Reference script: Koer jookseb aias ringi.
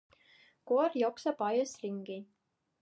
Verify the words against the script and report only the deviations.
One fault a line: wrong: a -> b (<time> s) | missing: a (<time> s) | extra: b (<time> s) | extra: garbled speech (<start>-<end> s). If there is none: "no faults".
no faults